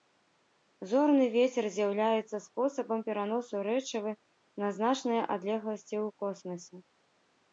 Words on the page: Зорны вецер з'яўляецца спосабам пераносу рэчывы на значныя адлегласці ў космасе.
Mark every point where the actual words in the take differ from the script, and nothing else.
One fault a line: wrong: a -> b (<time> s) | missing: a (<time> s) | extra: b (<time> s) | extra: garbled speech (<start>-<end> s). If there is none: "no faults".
no faults